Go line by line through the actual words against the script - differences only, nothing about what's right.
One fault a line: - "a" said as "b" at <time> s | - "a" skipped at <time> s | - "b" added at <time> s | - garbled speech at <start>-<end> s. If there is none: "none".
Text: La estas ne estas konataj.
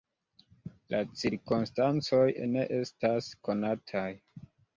- "estas" said as "cirkonstancoj" at 1.2 s